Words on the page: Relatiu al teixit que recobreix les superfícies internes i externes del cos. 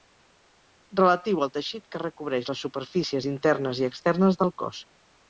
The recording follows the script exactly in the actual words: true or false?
true